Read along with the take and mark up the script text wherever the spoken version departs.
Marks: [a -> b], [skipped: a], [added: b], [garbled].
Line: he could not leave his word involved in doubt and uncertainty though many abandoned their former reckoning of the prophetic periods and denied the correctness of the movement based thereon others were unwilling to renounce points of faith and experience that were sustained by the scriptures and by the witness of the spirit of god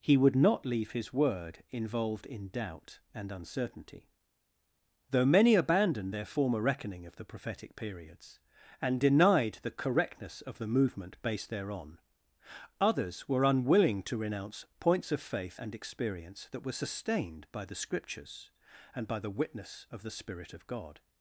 he [could -> would] not leave his word involved in doubt and uncertainty though many abandoned their former reckoning of the prophetic periods and denied the correctness of the movement based thereon others were unwilling to renounce points of faith and experience that were sustained by the scriptures and by the witness of the spirit of god